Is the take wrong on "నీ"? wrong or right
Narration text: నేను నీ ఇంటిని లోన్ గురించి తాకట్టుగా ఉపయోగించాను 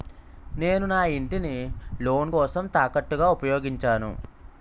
wrong